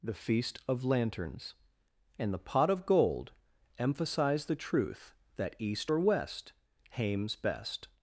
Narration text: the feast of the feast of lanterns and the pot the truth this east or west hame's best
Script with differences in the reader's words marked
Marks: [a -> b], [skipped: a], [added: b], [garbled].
the feast of [skipped: the feast of] lanterns and the pot [added: of gold emphasize] the truth [this -> that] east or west hame's best